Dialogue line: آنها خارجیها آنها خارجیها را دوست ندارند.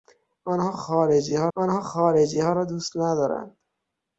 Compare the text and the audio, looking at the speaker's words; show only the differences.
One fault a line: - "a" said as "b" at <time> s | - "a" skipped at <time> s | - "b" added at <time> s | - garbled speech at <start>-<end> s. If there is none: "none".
none